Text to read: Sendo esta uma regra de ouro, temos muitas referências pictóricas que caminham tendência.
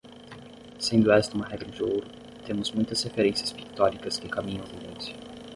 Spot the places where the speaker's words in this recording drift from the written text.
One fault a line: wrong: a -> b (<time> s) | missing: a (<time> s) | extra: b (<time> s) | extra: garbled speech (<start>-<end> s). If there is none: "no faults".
no faults